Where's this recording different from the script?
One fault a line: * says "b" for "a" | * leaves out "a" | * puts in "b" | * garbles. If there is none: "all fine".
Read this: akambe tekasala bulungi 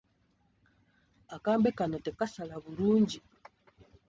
* puts in "kano"